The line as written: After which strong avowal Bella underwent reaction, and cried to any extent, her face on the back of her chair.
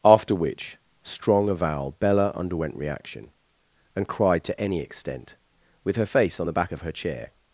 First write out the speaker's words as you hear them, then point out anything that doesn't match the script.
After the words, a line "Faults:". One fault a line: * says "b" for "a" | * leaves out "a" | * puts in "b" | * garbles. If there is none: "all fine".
After which strong avowal Bella underwent reaction, and cried to any extent, with her face on the back of her chair.
Faults:
* puts in "with"